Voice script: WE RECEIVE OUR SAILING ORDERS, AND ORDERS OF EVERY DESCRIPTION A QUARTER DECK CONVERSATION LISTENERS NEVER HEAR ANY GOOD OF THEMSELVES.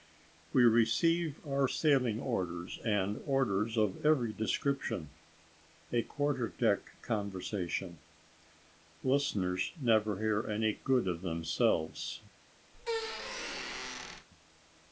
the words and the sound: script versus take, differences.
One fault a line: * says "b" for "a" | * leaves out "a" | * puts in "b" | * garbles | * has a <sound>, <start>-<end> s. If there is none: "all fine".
* has a squeak, 12.7-14.3 s